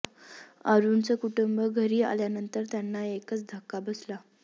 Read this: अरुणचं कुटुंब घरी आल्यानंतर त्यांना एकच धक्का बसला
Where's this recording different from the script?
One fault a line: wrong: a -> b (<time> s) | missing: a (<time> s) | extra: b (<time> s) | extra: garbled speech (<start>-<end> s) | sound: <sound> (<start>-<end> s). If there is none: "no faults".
no faults